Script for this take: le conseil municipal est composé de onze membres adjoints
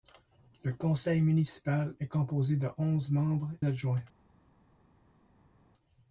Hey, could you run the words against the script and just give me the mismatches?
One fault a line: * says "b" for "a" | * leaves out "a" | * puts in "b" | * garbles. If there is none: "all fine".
all fine